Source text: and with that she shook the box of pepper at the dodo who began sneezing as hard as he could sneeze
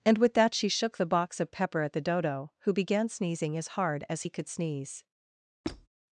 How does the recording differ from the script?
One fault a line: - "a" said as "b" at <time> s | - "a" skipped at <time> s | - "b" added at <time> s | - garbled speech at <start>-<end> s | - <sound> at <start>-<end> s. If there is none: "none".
- squeak at 5.6-5.9 s